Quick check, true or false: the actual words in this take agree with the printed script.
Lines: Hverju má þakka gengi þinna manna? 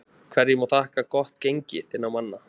false